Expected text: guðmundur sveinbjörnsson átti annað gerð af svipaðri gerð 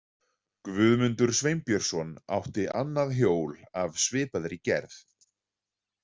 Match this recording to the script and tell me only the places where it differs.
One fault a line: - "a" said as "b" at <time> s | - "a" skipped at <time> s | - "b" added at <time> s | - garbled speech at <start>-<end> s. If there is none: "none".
- "gerð" said as "hjól" at 3.2 s